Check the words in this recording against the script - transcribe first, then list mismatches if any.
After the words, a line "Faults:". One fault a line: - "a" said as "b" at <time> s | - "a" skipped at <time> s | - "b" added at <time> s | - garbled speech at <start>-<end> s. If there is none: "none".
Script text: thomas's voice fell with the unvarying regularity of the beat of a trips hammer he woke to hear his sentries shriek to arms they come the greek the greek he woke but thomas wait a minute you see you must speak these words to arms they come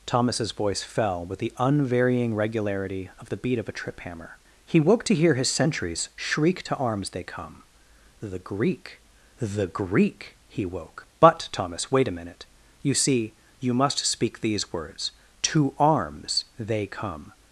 thomas's voice fell with the unvarying regularity of the beat of a trip hammer he woke to hear his sentries shriek to arms they come the greek the greek he woke but thomas wait a minute you see you must speak these words to arms they come
Faults:
- "trips" said as "trip" at 3.8 s